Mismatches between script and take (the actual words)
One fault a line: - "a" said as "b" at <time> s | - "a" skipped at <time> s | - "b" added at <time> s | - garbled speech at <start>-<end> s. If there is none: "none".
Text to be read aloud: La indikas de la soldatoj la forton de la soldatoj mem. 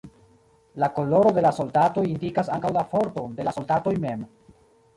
- "indikas" said as "koloro" at 0.9 s
- "indikas ankaŭ" added at 2.1 s